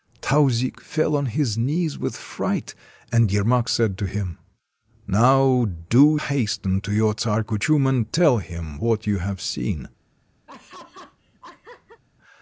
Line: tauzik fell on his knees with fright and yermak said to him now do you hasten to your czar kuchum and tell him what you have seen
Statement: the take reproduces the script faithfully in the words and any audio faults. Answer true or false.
false